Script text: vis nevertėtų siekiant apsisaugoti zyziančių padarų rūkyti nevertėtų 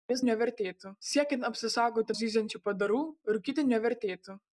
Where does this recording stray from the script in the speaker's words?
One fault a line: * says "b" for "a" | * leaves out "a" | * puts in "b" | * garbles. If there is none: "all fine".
all fine